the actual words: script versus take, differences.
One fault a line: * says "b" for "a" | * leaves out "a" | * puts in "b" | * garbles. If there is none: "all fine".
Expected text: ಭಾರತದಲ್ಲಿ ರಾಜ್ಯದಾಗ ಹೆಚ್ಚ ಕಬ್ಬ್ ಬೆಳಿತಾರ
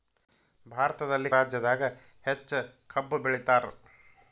all fine